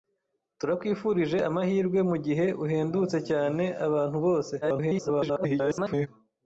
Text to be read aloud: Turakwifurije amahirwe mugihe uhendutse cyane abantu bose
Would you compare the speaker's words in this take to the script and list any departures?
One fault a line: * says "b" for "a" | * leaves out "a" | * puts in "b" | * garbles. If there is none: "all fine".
* garbles